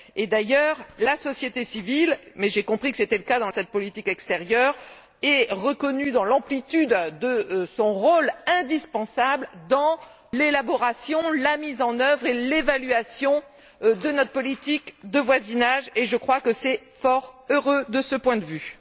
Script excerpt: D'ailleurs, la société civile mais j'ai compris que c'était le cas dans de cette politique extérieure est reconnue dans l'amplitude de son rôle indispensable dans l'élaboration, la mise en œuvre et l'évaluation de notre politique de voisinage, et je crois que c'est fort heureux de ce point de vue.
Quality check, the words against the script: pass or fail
pass